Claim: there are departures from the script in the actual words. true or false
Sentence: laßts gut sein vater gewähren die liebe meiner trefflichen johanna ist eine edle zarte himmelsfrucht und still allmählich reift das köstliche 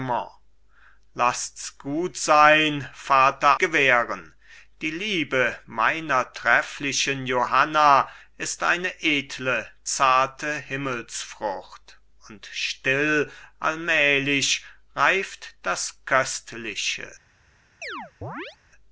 false